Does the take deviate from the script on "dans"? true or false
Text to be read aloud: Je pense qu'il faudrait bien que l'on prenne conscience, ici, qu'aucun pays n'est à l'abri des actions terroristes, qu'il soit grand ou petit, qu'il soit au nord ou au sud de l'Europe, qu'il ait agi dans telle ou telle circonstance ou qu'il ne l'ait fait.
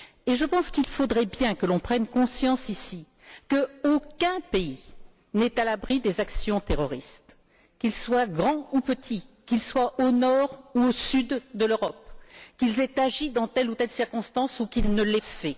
false